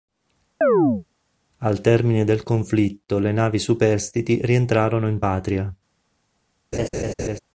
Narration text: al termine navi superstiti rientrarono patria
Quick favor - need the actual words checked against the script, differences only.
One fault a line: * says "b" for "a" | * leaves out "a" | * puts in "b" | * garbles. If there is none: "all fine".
* puts in "del conflitto le"
* puts in "in"